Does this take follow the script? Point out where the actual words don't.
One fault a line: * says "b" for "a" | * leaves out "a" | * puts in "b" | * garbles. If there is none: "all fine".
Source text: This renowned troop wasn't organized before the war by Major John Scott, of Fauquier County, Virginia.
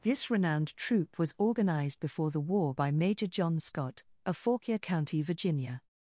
* says "was" for "wasn't"